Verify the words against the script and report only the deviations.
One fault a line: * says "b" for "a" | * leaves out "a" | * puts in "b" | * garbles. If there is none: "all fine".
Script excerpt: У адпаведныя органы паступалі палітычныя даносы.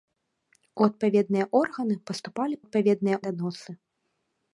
* says "адпаведныя" for "палітычныя"